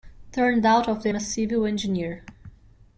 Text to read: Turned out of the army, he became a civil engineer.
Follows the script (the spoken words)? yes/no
no